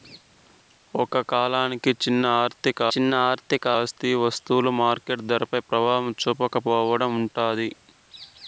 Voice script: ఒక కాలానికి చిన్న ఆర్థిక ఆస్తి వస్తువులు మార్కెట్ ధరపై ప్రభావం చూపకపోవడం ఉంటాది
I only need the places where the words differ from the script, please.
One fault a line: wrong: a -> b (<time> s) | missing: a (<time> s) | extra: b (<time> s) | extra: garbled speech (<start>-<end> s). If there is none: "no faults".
extra: చిన్న ఆర్థిక (2.9 s)